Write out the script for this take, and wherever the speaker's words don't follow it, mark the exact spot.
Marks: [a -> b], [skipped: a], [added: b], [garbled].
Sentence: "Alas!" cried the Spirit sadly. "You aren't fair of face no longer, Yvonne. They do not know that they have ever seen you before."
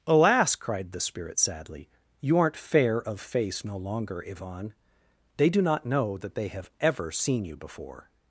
"Alas!" cried the Spirit sadly. "You aren't fair of face no longer, Yvonne. They do not know that they have ever seen you before."